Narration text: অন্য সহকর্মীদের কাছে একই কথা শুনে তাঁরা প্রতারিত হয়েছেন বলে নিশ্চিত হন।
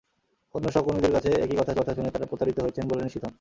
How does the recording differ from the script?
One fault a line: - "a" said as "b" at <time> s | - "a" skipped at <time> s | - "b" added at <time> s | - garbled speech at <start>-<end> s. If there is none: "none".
- "কথা" added at 1.8 s